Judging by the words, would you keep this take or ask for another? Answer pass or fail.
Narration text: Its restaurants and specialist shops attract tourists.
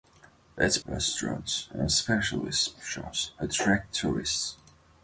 pass